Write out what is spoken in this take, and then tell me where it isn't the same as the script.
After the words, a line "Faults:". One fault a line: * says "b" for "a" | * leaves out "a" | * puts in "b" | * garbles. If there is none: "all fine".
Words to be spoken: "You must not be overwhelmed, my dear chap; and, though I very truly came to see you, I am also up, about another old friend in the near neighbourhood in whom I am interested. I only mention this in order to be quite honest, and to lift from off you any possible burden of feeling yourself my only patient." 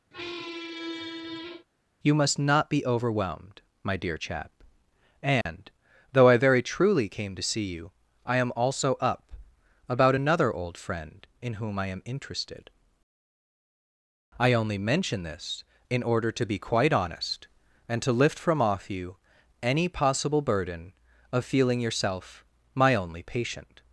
"You must not be overwhelmed, my dear chap; and, though I very truly came to see you, I am also up, about another old friend in whom I am interested. I only mention this in order to be quite honest, and to lift from off you any possible burden of feeling yourself my only patient."
Faults:
* leaves out "the near neighbourhood in"